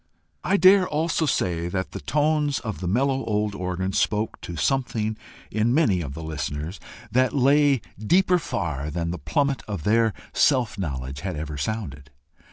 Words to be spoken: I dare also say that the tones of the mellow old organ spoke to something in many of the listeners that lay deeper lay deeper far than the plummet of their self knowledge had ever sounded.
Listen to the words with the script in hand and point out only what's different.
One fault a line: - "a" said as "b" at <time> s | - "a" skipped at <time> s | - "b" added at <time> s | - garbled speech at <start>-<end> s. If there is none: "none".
- "lay deeper" skipped at 8.4 s